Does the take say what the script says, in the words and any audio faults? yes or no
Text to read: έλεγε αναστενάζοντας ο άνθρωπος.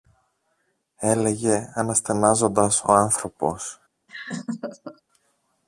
no